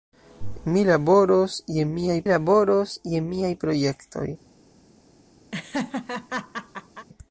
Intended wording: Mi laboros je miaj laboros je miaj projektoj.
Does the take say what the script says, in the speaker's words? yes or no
yes